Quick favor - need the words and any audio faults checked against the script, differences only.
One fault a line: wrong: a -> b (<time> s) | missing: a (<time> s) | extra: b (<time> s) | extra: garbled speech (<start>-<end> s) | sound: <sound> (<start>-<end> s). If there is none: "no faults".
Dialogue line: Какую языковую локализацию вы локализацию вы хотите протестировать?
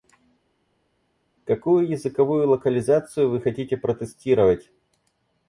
missing: локализацию вы (3.4 s)